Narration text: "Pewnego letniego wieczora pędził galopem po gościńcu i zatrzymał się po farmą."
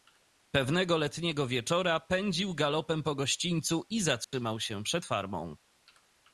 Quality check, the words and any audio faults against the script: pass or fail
fail